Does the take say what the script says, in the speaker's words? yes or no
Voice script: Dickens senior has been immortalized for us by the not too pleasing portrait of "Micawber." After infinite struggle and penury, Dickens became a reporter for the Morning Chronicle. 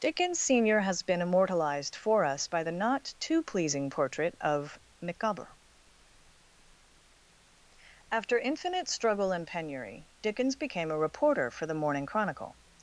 yes